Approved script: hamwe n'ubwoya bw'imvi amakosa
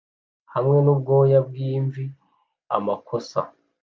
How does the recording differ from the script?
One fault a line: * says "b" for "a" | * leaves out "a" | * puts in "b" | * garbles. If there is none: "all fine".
all fine